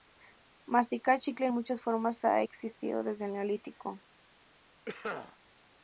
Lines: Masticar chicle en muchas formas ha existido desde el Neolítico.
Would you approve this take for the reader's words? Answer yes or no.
yes